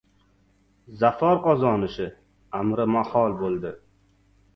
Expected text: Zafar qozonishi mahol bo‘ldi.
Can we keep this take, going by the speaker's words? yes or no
no